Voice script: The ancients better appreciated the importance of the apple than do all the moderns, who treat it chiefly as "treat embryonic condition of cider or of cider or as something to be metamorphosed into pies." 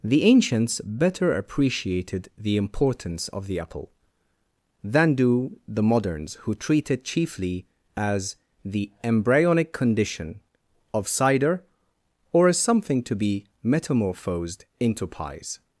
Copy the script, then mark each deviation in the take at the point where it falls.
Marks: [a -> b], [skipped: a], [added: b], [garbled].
The ancients better appreciated the importance of the apple than do [skipped: all] the moderns, who treat it chiefly as ["treat -> the] embryonic condition of cider or [skipped: of cider or] as something to be metamorphosed into pies."